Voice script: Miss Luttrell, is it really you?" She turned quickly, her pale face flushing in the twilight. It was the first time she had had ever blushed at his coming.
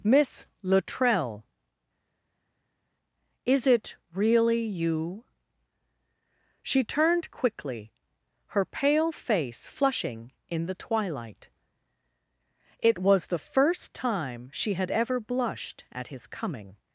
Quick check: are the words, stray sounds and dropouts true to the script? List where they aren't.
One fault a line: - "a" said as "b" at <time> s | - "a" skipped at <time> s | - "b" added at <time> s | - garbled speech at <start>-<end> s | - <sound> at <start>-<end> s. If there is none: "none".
- "had" skipped at 14.9 s